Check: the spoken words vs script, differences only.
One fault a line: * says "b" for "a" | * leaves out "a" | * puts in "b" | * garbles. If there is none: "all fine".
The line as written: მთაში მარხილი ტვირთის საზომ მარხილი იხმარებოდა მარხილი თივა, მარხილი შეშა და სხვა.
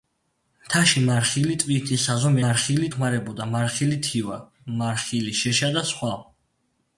all fine